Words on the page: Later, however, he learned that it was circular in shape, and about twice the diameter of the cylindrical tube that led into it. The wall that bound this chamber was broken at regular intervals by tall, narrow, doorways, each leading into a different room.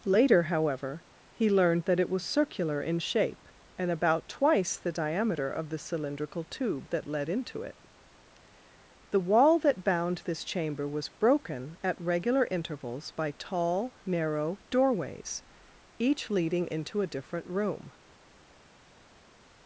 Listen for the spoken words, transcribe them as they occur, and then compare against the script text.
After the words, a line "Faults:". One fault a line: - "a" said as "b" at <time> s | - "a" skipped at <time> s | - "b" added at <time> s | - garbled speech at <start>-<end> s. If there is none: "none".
Later, however, he learned that it was circular in shape, and about twice the diameter of the cylindrical tube that led into it. The wall that bound this chamber was broken at regular intervals by tall, narrow, doorways, each leading into a different room.
Faults:
none